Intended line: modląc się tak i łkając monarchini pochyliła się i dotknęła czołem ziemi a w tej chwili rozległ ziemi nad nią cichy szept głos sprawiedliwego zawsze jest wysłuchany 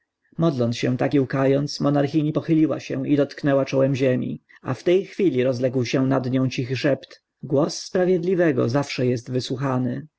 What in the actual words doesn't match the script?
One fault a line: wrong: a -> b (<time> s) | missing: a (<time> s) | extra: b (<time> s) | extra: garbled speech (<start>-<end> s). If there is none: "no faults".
wrong: ziemi -> się (5.8 s)